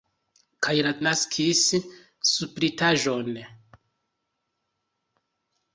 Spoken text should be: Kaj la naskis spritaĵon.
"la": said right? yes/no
yes